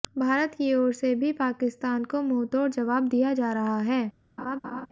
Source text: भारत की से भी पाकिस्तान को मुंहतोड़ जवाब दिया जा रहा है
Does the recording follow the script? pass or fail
fail